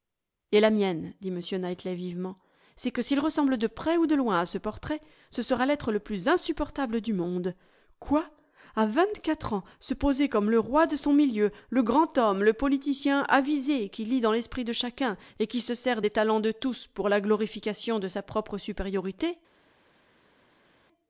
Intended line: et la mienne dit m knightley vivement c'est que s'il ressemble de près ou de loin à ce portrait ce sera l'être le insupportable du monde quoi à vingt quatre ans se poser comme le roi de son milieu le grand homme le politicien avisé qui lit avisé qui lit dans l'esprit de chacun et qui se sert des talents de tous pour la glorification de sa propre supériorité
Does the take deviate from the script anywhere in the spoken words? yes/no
yes